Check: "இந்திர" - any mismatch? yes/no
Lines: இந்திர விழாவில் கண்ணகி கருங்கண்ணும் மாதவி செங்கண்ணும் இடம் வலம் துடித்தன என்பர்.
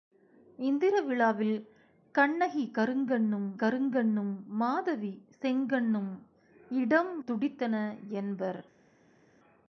no